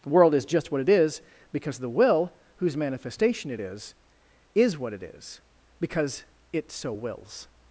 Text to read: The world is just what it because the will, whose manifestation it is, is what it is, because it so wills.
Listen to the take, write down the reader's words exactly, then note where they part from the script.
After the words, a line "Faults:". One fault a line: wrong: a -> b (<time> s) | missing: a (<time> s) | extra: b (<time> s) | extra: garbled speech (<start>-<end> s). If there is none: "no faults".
The world is just what it is because the will, whose manifestation it is, is what it is, because it so wills.
Faults:
extra: is (0.9 s)